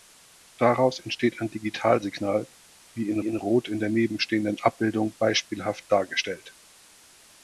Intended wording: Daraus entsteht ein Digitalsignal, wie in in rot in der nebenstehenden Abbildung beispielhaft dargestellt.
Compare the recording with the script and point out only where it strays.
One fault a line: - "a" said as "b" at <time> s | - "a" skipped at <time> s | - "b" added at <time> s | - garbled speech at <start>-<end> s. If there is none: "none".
none